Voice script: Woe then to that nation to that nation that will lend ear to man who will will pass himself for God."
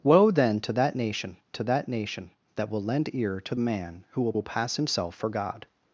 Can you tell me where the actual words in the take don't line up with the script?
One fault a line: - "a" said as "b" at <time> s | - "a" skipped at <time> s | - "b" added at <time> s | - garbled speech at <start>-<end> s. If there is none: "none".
none